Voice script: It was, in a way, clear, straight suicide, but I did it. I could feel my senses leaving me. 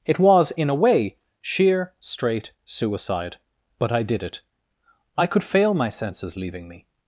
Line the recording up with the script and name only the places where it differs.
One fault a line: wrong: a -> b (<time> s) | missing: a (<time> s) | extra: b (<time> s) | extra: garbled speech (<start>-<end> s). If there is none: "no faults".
wrong: clear -> sheer (1.4 s)
wrong: feel -> fail (5.4 s)